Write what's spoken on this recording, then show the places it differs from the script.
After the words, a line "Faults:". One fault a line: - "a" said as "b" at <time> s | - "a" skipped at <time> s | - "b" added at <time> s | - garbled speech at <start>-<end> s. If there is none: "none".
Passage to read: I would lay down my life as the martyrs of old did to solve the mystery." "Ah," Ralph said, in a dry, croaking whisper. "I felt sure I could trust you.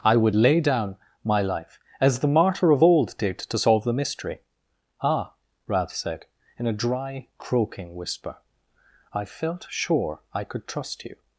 I would lay down my life as the martyr of old did to solve the mystery." "Ah," Ralph said, in a dry, croaking whisper. "I felt sure I could trust you.
Faults:
- "martyrs" said as "martyr" at 2.3 s